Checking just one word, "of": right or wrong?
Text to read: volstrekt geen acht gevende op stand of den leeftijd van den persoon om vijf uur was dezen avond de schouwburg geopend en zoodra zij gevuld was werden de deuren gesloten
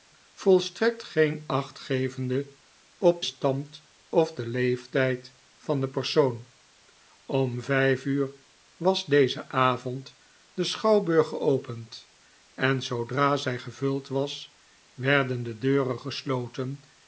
right